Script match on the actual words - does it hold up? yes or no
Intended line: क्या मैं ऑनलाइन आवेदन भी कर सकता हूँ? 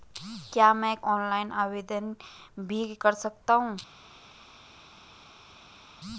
yes